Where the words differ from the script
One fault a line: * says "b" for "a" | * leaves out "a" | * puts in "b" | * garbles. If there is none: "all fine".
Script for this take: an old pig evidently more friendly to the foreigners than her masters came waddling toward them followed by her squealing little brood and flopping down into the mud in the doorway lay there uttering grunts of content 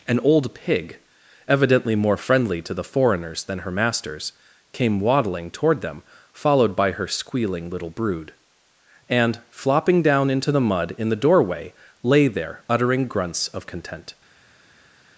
all fine